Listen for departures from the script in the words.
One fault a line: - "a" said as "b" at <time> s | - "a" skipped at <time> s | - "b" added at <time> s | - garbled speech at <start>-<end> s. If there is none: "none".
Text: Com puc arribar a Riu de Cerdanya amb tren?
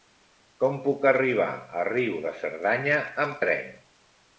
none